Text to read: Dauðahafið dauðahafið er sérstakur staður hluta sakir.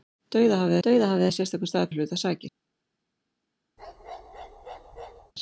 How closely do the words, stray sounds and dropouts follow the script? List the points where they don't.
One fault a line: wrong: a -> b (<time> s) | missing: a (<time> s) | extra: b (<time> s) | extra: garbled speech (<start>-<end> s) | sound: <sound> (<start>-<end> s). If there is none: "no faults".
sound: bark (3.8-5.3 s)